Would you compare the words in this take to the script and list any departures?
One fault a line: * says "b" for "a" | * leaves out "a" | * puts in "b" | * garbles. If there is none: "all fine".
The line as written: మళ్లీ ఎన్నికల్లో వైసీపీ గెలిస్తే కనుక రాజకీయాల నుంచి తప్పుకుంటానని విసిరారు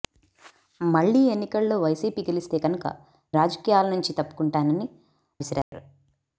all fine